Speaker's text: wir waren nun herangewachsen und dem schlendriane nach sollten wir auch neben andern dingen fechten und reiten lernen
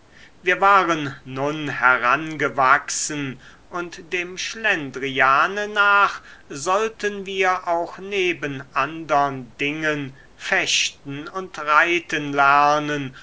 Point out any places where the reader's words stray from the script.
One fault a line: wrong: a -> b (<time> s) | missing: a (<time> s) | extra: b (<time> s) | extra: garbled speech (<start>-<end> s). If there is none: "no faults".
no faults